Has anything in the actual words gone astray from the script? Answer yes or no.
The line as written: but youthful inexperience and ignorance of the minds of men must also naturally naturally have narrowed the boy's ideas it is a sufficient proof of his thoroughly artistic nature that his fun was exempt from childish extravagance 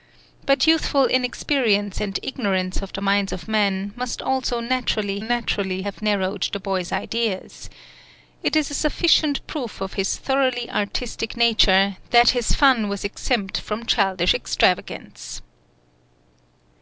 no